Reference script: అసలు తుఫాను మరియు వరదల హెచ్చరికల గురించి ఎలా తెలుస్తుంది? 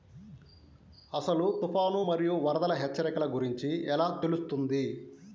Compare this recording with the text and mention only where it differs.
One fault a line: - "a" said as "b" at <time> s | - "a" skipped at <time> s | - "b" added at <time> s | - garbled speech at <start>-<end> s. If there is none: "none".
none